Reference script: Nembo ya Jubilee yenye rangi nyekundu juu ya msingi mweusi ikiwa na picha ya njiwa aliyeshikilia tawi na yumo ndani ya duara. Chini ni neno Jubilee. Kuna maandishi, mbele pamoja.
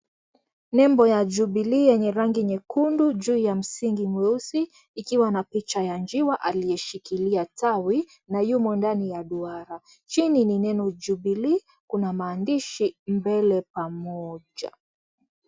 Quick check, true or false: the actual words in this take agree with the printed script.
true